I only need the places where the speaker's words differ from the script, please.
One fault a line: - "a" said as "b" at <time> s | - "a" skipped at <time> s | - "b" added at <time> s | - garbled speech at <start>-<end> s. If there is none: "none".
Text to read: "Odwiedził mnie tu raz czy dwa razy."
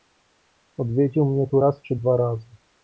none